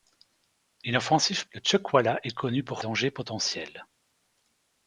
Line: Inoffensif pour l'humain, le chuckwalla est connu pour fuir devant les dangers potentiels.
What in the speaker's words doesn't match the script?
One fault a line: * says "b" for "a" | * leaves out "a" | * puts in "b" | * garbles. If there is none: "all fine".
* leaves out "pour l'humain"
* leaves out "fuir devant les"